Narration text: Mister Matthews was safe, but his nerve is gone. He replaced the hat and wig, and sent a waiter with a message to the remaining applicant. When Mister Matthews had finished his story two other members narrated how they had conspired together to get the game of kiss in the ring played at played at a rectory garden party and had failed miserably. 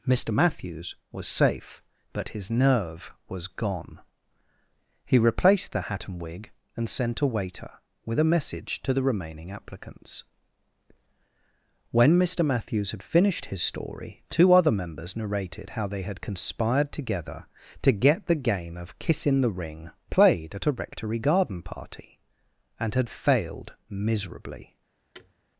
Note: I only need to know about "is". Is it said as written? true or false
false